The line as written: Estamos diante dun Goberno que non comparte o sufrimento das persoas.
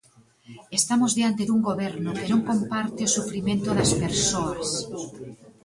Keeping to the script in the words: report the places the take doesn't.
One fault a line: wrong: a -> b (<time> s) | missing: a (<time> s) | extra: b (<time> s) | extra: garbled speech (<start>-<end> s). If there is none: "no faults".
no faults